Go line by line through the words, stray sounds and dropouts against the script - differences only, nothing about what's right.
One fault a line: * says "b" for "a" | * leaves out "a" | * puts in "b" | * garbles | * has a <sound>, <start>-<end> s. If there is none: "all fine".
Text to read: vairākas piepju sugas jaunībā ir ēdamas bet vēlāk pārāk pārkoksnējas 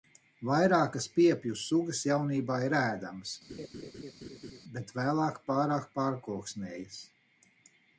* has a laugh, 3.5-4.6 s